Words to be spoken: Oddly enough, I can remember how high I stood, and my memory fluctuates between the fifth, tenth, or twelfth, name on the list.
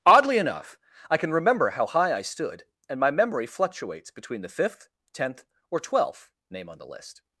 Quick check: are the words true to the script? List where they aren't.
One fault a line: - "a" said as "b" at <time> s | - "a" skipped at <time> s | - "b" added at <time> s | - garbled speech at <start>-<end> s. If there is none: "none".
none